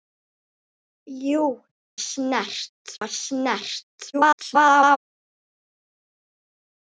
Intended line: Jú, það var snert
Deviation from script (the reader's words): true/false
true